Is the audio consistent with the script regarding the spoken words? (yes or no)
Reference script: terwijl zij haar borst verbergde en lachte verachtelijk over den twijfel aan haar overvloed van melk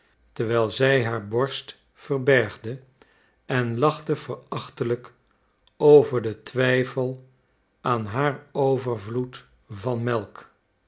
yes